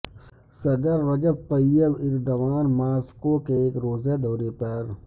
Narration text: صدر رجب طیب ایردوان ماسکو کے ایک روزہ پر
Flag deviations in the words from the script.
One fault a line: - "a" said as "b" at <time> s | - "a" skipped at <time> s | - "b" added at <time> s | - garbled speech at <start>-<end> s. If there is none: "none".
- "دورے" added at 4.2 s